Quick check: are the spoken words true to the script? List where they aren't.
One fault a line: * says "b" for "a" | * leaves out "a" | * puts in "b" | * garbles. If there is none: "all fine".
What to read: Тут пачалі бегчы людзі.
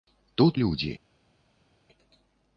* leaves out "пачалі бегчы"